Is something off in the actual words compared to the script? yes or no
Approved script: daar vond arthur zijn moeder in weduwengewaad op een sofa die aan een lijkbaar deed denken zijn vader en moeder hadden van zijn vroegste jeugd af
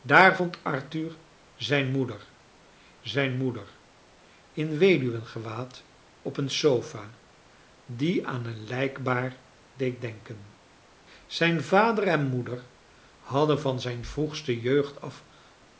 yes